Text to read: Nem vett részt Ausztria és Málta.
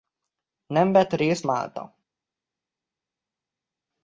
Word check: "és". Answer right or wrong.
wrong